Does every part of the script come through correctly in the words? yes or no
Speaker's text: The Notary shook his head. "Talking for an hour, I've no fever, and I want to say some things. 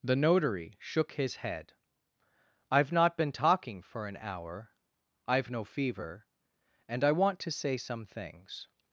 no